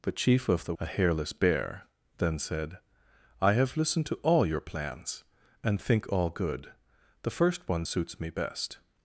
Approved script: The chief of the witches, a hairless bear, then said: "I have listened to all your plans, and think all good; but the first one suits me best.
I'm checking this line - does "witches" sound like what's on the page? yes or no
no